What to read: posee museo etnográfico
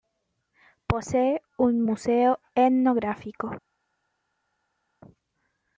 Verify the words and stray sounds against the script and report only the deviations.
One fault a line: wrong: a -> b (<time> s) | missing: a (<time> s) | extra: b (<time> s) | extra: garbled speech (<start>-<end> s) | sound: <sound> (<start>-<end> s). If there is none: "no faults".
extra: un (1.6 s)